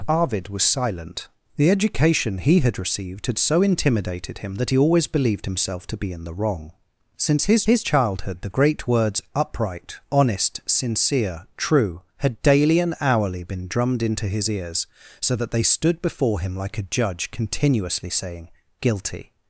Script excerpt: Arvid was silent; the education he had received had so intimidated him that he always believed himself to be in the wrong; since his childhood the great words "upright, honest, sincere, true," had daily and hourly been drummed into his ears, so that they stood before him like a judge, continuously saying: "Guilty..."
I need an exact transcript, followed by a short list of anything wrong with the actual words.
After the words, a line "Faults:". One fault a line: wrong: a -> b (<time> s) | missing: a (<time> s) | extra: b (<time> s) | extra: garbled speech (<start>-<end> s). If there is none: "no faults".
Arvid was silent; the education he had received had so intimidated him that he always believed himself to be in the wrong; since his his childhood the great words "upright, honest, sincere, true," had daily and hourly been drummed into his ears, so that they stood before him like a judge, continuously saying: "Guilty..."
Faults:
extra: his (7.7 s)